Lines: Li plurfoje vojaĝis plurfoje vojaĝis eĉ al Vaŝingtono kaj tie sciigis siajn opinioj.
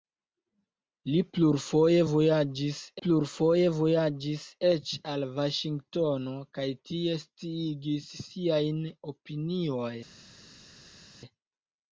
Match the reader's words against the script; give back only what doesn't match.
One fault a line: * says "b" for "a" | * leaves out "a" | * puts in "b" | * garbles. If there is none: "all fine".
all fine